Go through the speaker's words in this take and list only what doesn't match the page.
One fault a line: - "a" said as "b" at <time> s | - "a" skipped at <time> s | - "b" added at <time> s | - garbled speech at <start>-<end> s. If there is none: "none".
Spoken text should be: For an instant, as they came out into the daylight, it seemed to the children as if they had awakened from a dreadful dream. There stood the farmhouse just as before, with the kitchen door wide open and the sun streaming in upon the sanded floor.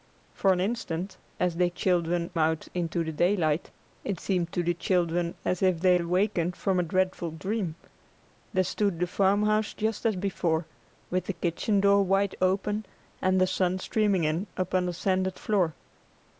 - "came" said as "children" at 1.7 s
- "had" skipped at 6.0 s